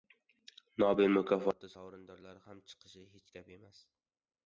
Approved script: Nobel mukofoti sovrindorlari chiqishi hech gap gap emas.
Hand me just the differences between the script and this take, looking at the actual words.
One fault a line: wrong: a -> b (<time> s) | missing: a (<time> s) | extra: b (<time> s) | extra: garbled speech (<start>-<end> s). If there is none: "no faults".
extra: ham (2.5 s)
missing: gap (3.6 s)